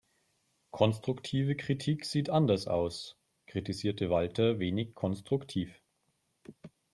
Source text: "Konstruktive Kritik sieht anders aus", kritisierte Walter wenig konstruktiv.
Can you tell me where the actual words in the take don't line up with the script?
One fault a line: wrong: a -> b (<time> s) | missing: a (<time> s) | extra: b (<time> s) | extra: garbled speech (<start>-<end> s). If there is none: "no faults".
no faults